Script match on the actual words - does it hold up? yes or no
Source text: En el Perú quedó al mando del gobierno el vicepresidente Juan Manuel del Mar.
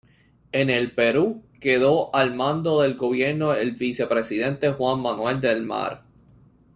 yes